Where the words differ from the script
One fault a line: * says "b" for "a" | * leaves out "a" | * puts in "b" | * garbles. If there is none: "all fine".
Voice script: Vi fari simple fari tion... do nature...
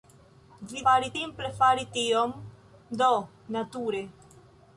all fine